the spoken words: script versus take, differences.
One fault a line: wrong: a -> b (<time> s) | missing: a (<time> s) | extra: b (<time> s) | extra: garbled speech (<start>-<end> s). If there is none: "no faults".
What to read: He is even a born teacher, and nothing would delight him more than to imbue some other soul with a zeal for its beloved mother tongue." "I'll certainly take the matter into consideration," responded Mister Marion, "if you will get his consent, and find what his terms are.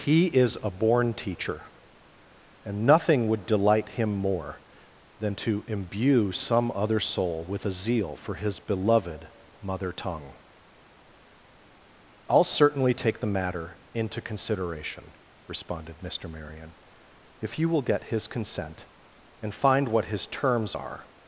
missing: even (0.6 s)
wrong: its -> his (8.3 s)